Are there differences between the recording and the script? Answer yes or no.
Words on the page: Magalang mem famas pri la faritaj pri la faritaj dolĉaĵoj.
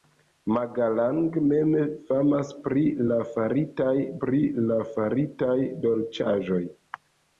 no